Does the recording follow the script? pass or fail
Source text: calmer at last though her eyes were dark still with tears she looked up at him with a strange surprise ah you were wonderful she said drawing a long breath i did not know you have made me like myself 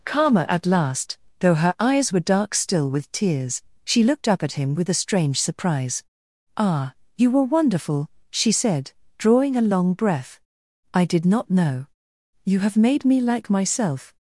pass